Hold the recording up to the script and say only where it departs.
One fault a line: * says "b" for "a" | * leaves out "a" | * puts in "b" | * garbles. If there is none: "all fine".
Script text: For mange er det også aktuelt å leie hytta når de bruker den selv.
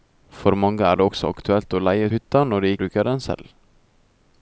all fine